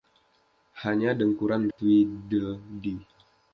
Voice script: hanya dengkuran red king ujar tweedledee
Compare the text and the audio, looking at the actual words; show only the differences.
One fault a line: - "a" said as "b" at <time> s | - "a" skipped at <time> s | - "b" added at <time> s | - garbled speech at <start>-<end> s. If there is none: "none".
- "red king ujar" skipped at 1.7 s